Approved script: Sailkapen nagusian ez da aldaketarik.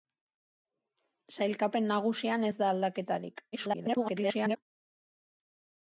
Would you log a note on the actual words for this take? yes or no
yes